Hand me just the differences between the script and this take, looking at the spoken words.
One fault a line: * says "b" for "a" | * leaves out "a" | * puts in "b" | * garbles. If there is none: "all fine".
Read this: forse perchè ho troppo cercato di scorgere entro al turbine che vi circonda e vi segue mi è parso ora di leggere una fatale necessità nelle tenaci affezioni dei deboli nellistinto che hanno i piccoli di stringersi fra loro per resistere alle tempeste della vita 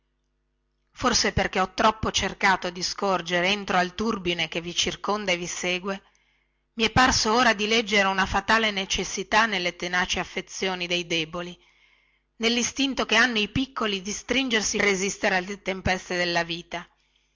* leaves out "fra loro per"